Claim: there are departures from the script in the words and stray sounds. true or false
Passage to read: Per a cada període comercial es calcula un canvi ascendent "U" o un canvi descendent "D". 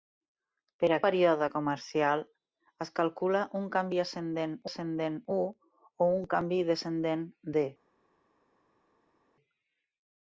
true